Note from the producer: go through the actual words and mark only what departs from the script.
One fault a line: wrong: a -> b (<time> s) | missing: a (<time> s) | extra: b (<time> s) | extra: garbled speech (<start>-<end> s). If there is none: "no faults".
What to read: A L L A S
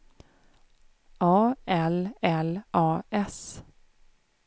no faults